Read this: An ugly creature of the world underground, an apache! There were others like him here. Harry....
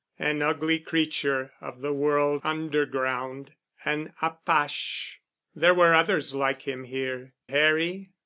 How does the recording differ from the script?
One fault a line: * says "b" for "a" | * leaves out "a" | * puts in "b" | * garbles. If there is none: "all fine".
all fine